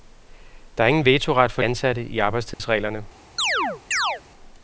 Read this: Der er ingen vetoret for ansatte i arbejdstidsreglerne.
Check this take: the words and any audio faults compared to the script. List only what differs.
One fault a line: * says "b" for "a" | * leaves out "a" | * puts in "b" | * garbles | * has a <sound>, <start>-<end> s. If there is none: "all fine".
* has a dropout, 2.5-2.6 s
* has a chirp, 3.4-4.2 s